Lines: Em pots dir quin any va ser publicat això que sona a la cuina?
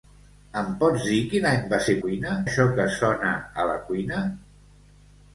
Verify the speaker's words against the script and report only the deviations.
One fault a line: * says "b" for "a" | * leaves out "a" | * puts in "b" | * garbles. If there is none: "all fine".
* says "cuina" for "publicat"